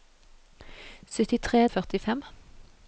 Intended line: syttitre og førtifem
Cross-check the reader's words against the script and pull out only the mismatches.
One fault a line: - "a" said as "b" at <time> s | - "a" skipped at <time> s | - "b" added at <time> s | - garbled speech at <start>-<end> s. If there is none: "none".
none